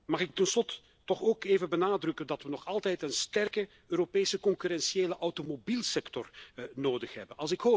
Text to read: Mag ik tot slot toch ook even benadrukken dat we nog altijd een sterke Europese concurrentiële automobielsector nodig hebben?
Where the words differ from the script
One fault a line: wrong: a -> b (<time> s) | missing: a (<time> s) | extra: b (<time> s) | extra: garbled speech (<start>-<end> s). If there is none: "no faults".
no faults